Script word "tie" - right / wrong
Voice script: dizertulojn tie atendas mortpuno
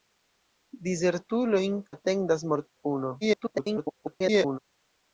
wrong